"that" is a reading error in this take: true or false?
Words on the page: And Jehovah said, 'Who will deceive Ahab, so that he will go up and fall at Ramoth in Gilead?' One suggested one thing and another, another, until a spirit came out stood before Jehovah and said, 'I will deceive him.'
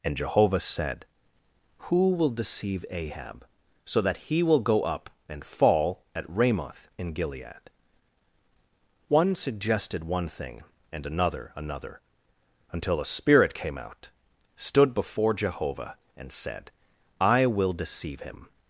false